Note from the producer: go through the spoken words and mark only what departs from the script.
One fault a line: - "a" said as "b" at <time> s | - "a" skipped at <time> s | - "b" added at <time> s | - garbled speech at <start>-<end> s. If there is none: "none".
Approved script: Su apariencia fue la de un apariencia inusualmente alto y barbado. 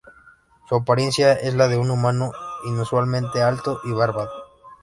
- "fue" said as "es" at 1.3 s
- "apariencia" said as "humano" at 1.9 s